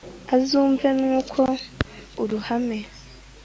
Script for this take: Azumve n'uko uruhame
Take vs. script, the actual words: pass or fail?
pass